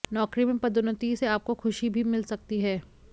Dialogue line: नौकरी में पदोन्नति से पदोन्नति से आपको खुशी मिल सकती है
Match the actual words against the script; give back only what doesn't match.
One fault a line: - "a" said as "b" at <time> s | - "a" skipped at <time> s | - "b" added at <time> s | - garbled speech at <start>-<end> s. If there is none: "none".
- "पदोन्नति से" skipped at 1.3 s
- "भी" added at 1.9 s